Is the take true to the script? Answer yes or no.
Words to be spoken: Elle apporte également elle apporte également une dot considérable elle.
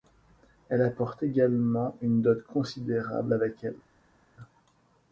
no